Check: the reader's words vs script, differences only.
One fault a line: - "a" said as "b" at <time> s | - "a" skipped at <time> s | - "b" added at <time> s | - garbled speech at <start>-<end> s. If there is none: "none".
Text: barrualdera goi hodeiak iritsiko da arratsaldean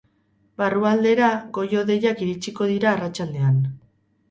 - "da" said as "dira" at 2.7 s